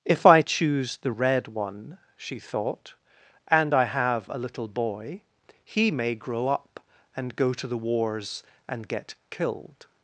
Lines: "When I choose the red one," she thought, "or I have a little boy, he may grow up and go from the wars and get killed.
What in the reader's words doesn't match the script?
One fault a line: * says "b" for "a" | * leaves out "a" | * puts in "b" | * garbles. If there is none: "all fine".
* says "If" for "When"
* says "and" for "or"
* says "to" for "from"